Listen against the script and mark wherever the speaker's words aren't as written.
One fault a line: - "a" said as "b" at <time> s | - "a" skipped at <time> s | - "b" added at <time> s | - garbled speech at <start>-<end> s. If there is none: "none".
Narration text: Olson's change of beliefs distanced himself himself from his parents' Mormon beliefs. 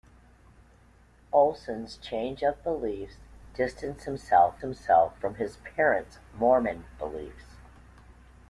none